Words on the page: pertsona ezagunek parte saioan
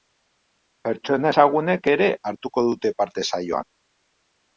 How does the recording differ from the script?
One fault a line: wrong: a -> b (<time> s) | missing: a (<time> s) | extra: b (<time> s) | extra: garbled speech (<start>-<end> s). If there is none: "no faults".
extra: ere hartuko dute (1.9 s)